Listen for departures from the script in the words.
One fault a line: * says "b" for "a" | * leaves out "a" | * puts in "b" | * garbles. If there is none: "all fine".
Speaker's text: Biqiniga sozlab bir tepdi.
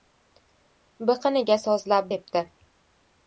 * leaves out "bir"